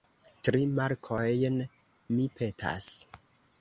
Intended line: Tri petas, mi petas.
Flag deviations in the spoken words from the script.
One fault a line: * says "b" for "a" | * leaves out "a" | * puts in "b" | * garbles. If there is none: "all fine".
* says "markojn" for "petas"